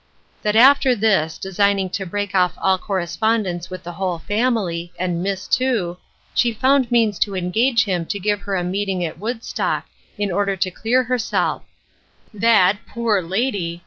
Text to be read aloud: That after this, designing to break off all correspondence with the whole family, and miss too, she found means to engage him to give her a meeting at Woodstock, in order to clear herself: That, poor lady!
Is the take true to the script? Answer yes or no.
yes